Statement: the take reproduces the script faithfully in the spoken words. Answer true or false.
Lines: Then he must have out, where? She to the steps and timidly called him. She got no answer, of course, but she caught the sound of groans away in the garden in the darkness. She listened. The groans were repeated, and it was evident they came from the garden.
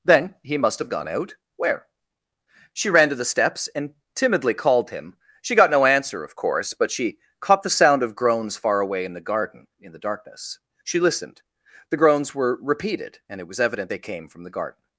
false